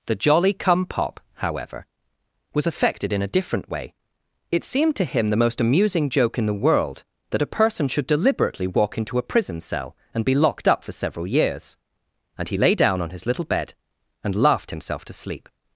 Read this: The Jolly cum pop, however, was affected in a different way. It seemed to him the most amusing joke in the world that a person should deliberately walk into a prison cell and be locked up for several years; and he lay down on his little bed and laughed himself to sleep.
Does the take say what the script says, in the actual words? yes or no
yes